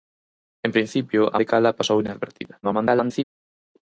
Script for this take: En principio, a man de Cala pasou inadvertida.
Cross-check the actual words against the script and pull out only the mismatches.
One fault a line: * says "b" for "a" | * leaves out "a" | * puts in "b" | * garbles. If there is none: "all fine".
* leaves out "man"
* garbles